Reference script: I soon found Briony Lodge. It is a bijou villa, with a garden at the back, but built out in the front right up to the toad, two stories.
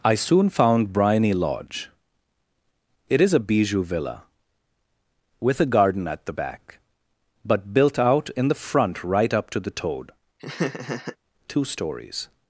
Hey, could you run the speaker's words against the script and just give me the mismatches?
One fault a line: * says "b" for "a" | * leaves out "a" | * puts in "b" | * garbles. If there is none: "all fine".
all fine